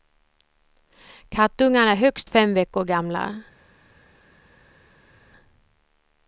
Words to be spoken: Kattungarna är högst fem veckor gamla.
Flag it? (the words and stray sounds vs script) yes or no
no